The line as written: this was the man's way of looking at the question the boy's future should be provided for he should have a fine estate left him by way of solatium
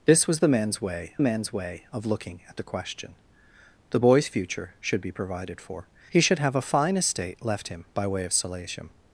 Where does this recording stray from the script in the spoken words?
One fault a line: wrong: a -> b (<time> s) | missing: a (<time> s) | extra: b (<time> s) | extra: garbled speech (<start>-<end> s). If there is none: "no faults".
extra: man's way (1.2 s)